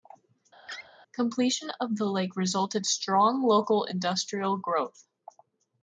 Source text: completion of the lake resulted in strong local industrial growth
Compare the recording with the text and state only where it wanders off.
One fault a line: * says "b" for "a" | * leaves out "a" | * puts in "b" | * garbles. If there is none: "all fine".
* leaves out "in"